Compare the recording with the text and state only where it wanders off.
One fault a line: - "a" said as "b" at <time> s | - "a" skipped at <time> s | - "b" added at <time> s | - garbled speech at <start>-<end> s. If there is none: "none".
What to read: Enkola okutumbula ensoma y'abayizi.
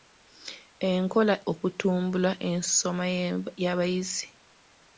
none